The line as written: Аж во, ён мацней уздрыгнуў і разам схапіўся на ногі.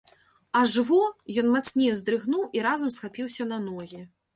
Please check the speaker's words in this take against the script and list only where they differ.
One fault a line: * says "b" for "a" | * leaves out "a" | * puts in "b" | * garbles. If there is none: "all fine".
all fine